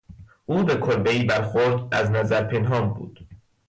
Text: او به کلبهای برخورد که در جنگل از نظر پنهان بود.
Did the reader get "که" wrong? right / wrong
wrong